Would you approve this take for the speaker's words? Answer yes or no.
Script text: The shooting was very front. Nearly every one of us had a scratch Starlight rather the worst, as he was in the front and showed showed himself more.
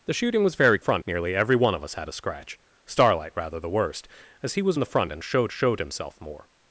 yes